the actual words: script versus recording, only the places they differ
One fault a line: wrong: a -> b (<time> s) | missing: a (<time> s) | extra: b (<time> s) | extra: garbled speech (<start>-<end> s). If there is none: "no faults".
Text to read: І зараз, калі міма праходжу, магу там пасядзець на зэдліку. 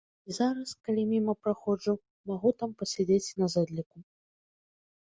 no faults